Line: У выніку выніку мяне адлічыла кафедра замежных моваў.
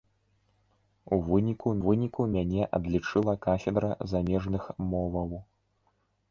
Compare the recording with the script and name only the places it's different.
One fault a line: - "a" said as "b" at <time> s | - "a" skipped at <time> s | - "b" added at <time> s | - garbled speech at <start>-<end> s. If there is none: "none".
none